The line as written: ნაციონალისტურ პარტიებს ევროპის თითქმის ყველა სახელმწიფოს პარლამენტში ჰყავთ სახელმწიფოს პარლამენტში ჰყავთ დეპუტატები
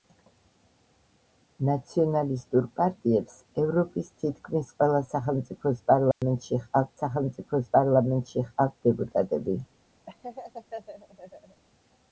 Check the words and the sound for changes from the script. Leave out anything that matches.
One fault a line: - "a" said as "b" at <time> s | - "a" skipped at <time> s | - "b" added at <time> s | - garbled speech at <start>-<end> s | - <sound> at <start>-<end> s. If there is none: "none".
- dropout at 6.1-6.2 s
- laugh at 10.1-11.6 s